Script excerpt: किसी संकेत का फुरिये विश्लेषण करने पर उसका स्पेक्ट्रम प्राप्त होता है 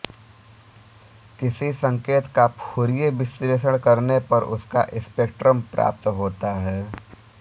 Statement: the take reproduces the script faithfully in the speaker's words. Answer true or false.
true